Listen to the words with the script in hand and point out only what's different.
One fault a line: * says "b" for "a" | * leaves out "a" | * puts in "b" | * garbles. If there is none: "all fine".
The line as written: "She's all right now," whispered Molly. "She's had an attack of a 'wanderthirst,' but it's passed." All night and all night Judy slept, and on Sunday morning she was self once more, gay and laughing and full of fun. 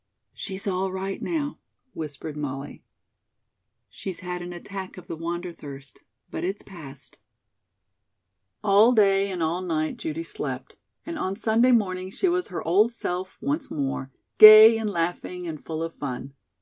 * says "the" for "a"
* says "day" for "night"
* puts in "her old"